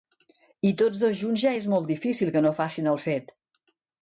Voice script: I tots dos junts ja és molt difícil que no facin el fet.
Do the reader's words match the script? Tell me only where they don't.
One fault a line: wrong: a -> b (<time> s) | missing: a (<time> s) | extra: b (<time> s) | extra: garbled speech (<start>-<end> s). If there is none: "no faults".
no faults